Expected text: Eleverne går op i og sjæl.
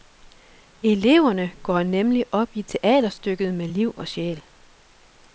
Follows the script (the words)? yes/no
no